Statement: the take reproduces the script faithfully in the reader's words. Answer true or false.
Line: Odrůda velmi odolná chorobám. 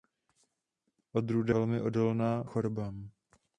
true